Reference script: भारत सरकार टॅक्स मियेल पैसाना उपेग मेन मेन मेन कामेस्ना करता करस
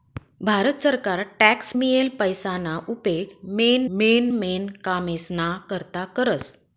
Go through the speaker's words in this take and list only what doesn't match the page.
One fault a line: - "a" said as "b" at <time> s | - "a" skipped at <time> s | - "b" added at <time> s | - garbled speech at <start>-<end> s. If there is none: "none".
none